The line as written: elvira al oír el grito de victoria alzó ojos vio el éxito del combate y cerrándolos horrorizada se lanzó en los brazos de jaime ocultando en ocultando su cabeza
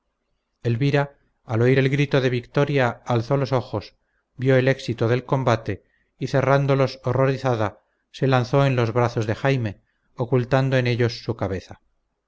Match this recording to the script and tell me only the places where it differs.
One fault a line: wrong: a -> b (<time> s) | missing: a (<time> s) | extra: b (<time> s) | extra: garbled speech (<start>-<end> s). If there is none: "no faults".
extra: los (3.4 s)
wrong: ocultando -> ellos (10.9 s)